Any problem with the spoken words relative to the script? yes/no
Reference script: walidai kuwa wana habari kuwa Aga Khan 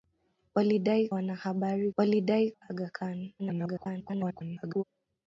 yes